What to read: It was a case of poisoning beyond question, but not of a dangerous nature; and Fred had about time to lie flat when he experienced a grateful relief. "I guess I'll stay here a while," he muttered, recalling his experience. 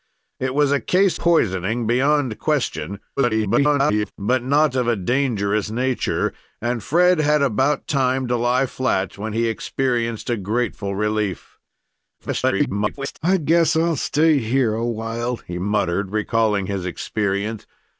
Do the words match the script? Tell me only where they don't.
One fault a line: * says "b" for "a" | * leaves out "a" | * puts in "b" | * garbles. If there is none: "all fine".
* leaves out "of"
* garbles
* garbles